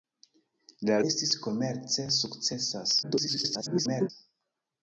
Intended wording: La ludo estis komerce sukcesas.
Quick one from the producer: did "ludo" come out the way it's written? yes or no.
no